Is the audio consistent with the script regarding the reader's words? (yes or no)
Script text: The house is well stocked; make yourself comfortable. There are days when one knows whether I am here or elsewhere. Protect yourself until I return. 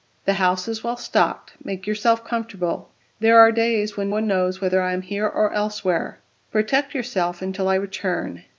yes